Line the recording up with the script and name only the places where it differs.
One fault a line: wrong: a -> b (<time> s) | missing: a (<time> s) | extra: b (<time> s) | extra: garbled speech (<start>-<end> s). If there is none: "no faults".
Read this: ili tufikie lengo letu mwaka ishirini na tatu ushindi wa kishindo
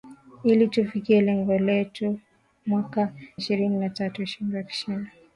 no faults